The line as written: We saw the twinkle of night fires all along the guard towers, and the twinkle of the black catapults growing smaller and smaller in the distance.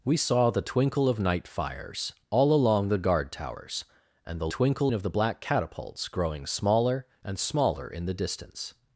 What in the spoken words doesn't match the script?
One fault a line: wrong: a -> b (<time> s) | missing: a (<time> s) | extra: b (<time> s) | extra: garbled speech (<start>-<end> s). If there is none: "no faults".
no faults